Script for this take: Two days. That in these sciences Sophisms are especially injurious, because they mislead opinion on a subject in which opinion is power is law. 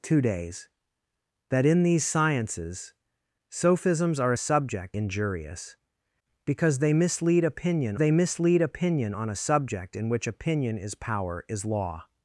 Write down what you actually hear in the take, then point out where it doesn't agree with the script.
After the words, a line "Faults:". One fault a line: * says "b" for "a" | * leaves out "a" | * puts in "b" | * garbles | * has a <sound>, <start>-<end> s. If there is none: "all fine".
Two days. That in these sciences Sophisms are subject injurious, because they mislead opinion they mislead opinion on a subject in which opinion is power is law.
Faults:
* says "subject" for "especially"
* puts in "they mislead opinion"